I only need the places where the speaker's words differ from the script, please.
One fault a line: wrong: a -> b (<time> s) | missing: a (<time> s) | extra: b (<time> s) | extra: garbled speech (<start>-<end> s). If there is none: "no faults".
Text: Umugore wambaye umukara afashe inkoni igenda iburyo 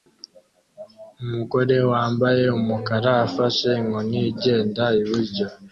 no faults